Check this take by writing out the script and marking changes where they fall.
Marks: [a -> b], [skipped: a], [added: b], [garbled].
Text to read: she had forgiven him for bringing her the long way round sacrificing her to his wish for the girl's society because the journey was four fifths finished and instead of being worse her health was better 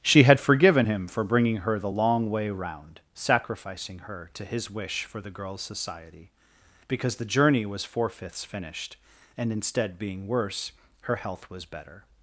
she had forgiven him for bringing her the long way round sacrificing her to his wish for the girl's society because the journey was four fifths finished and instead [skipped: of] being worse her health was better